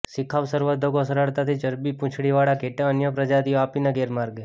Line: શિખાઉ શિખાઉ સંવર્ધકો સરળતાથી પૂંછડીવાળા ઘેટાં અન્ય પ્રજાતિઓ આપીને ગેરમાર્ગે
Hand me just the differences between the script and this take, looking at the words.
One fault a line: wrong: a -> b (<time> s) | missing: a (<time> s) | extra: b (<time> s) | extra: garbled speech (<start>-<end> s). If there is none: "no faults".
missing: શિખાઉ (0.4 s)
extra: ચરબી (1.6 s)